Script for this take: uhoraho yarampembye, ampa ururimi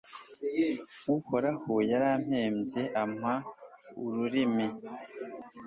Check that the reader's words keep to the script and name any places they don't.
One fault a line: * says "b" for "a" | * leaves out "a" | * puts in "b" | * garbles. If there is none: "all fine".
all fine